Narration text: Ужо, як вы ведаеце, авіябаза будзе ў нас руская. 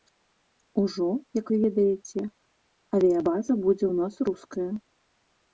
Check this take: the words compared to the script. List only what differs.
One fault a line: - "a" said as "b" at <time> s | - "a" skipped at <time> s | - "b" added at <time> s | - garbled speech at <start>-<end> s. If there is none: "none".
none